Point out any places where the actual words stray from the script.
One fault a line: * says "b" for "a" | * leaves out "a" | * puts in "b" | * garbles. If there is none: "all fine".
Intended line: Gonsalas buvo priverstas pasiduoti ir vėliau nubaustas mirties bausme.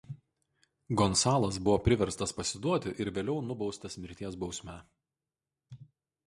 all fine